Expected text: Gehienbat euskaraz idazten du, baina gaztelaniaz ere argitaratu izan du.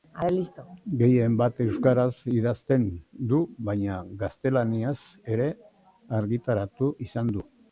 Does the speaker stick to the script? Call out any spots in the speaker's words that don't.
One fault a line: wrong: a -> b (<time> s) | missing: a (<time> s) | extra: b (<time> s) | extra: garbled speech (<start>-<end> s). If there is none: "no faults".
no faults